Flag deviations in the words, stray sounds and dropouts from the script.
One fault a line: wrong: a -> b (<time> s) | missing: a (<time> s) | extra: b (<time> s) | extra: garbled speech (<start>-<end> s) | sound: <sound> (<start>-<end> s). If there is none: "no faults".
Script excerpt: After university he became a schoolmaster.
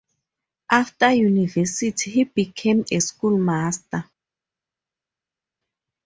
no faults